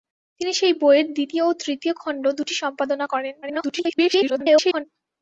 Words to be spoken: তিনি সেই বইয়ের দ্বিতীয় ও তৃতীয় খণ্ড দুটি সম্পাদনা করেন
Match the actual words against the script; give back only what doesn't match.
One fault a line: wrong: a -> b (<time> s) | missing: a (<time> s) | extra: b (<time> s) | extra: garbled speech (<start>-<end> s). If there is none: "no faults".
extra: garbled speech (3.4-4.9 s)